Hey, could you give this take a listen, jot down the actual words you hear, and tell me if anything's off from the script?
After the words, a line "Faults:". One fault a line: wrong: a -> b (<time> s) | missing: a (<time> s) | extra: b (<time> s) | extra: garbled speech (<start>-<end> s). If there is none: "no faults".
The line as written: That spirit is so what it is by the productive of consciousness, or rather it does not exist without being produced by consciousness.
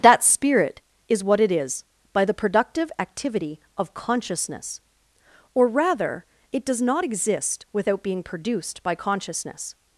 That spirit is what it is by the productive activity of consciousness, or rather it does not exist without being produced by consciousness.
Faults:
missing: so (1.2 s)
extra: activity (3.0 s)